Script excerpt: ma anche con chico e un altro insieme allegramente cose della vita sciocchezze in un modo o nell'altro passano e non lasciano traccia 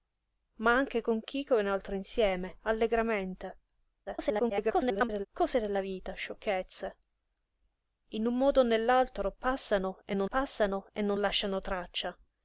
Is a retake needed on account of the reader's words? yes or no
yes